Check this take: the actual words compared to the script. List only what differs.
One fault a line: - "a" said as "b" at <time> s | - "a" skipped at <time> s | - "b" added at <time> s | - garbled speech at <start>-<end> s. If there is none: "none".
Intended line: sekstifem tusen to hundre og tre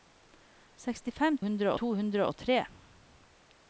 - "tusen" said as "hundre" at 1.5 s